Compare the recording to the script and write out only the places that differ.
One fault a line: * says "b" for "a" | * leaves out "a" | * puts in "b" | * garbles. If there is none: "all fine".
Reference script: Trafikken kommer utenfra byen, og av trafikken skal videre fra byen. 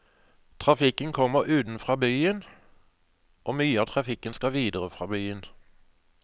* puts in "mye"